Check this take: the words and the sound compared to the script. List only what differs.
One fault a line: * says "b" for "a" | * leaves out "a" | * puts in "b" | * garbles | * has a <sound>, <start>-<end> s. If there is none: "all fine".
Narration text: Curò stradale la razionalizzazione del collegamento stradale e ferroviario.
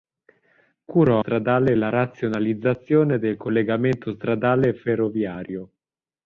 all fine